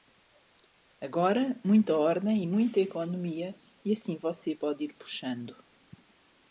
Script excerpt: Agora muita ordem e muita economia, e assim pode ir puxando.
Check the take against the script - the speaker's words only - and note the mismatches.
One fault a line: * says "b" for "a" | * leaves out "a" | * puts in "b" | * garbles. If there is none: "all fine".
* puts in "você"